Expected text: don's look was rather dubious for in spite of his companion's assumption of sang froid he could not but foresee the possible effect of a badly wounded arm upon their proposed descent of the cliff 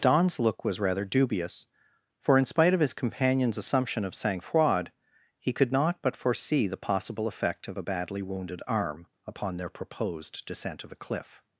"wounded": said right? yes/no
yes